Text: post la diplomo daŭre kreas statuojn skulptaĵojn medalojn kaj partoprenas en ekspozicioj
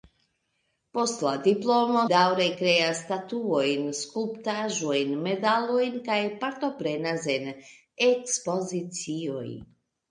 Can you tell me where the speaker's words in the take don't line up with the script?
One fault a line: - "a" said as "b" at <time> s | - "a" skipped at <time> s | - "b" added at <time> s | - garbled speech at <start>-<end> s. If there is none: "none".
none